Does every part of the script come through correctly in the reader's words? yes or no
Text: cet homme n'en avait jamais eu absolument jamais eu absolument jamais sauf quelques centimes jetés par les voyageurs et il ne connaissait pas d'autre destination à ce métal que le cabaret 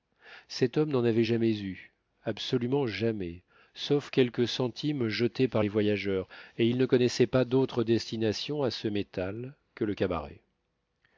no